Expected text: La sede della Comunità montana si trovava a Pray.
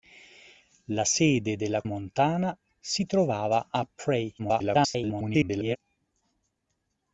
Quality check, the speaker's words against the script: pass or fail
fail